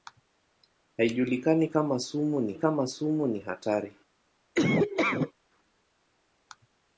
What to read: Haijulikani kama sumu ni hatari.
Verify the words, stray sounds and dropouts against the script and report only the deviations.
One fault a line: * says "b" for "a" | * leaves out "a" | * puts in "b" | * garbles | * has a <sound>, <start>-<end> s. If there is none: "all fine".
* puts in "kama sumu ni"
* has a laugh, 4.5-5.3 s